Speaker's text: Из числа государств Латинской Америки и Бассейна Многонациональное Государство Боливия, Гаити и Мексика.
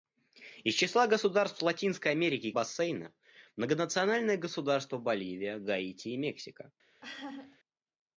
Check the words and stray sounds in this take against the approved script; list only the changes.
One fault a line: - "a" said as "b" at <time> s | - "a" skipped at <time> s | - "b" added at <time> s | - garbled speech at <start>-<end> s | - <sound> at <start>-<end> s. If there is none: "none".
- laugh at 7.0-7.6 s